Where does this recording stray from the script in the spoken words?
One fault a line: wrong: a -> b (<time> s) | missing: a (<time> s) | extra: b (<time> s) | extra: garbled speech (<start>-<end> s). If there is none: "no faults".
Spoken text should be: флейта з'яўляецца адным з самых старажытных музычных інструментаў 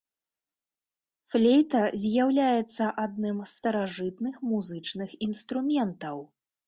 missing: самых (3.5 s)